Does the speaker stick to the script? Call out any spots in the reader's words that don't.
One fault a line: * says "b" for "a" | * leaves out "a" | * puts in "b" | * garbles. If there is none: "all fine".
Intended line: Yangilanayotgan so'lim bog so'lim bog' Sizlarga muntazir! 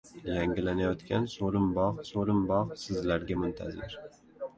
all fine